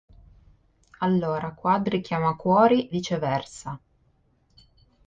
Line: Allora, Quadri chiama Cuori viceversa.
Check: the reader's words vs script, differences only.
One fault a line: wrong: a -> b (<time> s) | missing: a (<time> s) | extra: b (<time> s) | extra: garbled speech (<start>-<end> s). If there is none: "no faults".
no faults